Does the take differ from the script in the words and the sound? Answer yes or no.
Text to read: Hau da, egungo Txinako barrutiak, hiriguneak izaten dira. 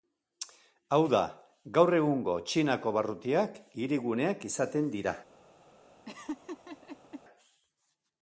yes